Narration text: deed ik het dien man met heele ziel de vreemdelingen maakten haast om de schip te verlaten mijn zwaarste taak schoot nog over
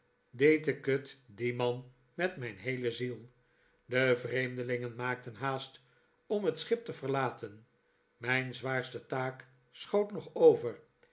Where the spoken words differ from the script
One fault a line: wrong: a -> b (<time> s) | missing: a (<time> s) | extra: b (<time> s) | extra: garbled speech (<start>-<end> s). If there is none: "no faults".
extra: mijn (2.4 s)
wrong: de -> het (6.4 s)